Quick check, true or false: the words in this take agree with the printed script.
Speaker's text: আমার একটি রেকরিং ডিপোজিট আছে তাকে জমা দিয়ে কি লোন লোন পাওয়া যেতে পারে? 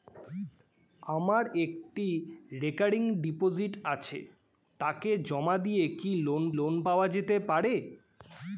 true